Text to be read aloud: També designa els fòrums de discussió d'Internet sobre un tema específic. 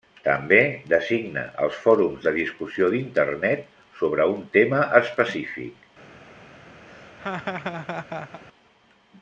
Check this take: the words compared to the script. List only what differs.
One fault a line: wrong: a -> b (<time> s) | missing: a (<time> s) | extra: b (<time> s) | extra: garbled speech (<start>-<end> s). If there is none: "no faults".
no faults